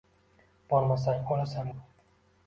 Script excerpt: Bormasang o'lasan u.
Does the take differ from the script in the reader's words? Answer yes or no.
no